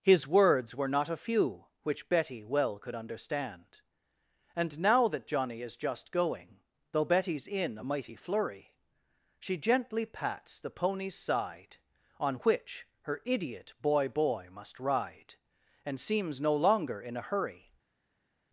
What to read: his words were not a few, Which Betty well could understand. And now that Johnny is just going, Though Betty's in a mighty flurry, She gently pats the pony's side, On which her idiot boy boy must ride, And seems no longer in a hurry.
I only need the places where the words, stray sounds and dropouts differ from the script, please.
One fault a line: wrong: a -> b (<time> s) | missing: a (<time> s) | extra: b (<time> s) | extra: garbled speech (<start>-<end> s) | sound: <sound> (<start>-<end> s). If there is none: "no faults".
no faults